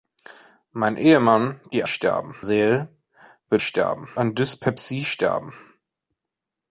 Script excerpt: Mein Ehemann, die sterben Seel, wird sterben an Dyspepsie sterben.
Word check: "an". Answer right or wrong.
right